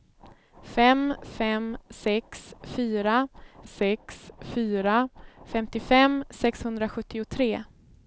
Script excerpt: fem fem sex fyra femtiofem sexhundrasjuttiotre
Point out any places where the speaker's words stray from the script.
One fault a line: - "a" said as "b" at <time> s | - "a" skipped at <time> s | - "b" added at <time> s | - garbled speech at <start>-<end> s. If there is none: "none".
- "sex fyra" added at 3.7 s